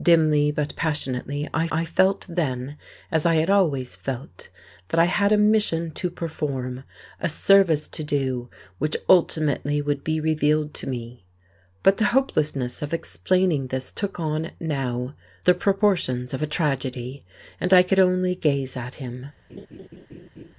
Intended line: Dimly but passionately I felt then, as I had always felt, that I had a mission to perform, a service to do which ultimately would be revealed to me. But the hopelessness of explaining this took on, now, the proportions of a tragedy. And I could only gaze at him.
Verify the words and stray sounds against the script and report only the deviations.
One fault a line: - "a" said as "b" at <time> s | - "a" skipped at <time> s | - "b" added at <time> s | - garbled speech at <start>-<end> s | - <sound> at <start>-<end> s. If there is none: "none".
- "I" added at 1.7 s
- laugh at 19.5-20.5 s